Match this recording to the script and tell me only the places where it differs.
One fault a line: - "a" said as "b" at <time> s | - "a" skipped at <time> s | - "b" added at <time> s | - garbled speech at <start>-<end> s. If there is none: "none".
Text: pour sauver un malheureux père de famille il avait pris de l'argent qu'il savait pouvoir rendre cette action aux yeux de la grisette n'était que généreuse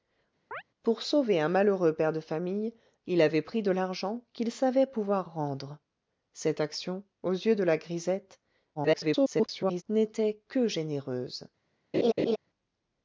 - garbled speech at 8.7-9.8 s